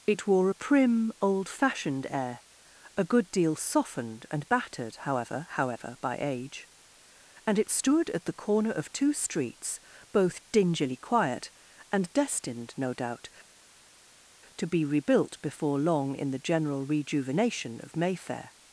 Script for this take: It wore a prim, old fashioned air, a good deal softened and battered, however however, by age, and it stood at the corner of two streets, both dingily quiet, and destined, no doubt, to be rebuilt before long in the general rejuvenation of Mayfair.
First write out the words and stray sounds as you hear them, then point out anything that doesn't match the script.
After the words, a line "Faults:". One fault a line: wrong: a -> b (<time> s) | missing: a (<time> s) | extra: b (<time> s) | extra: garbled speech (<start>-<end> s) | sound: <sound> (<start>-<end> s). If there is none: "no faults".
It wore a prim, old fashioned air, a good deal softened and battered, however however, by age, and it stood at the corner of two streets, both dingily quiet, and destined, no doubt, to be rebuilt before long in the general rejuvenation of Mayfair.
Faults:
no faults